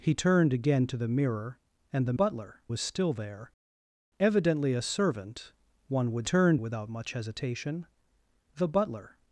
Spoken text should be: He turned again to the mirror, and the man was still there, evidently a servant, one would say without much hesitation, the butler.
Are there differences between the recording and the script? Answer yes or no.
yes